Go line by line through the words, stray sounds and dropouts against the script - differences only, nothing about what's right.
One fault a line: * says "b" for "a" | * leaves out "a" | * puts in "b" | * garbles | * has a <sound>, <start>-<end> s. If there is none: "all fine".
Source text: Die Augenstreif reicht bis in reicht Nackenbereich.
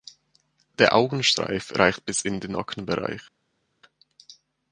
* says "Der" for "Die"
* says "den" for "reicht"